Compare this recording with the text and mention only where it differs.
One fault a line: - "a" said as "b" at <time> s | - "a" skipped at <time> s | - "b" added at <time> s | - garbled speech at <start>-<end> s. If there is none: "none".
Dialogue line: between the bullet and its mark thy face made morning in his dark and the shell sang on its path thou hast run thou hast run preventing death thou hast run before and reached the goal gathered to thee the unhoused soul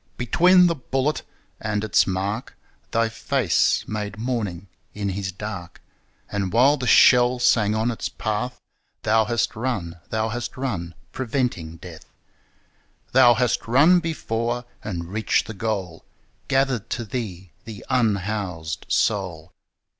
- "while" added at 6.5 s